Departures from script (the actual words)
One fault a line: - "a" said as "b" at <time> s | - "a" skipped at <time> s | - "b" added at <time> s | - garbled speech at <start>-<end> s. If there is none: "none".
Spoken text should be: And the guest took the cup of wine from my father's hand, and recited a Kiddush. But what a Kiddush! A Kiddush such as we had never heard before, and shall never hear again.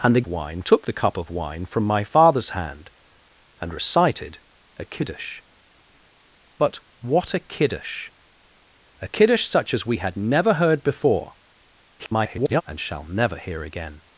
- "guest" said as "wine" at 0.3 s
- garbled speech at 12.0-12.6 s